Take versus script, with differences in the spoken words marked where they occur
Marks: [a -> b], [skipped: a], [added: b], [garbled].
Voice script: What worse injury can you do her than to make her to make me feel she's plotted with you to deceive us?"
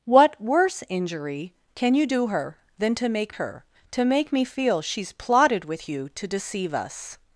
What worse injury can you do her than to make her to make me feel she's plotted with you to deceive us?"